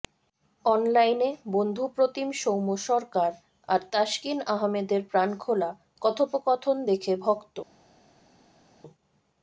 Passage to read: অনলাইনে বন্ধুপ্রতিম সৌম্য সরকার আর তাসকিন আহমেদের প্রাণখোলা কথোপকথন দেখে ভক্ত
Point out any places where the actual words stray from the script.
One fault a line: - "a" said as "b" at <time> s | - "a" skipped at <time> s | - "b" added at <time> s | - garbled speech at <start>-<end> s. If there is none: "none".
none